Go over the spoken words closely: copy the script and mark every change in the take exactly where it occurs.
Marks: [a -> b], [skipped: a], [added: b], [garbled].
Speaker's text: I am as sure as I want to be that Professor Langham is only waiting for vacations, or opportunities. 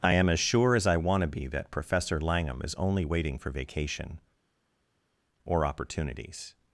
I am as sure as I want to be that Professor Langham is only waiting for [vacations, -> vacation] or opportunities.